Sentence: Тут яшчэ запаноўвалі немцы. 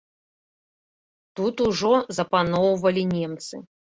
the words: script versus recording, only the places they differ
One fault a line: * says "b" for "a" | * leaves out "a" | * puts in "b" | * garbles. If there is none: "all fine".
* says "ужо" for "яшчэ"